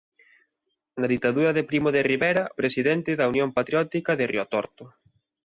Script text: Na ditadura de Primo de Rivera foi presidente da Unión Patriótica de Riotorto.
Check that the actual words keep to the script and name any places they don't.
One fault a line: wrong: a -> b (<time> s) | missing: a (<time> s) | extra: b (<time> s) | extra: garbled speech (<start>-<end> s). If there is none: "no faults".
missing: foi (2.4 s)